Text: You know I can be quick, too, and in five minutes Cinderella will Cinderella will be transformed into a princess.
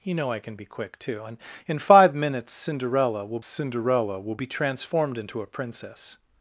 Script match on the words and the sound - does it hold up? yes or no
yes